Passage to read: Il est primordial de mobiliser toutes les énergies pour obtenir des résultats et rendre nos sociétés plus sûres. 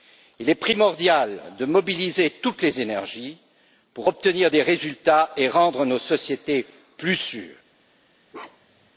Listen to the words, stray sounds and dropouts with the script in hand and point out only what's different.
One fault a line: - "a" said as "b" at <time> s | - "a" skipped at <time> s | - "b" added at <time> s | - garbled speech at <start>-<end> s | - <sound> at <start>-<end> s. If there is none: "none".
- bark at 8.3-8.9 s